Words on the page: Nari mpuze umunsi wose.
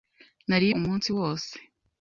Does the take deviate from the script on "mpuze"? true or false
true